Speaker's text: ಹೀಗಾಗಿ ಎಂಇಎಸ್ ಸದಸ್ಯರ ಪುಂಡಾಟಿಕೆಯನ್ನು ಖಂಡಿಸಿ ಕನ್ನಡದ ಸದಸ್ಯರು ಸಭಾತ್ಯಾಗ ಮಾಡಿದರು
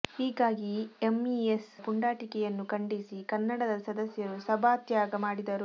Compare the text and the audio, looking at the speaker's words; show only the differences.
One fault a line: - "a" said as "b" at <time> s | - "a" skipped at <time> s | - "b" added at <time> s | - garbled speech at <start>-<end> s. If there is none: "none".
- "ಸದಸ್ಯರ" skipped at 1.7 s